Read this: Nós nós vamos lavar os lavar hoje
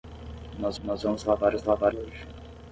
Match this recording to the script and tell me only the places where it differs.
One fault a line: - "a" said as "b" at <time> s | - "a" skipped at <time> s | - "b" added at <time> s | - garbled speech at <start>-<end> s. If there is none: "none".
none